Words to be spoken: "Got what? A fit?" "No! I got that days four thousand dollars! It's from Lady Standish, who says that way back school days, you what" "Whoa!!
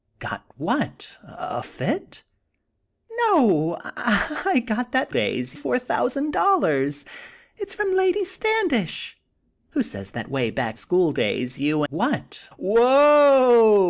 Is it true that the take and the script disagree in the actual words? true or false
false